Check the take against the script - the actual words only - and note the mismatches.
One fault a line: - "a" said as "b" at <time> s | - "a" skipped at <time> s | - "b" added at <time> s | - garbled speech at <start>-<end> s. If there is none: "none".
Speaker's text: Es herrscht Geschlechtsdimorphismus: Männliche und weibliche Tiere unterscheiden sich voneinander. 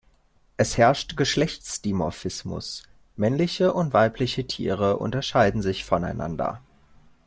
none